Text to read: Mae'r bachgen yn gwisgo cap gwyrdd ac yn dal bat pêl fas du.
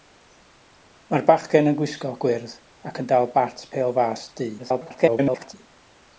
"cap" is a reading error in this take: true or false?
true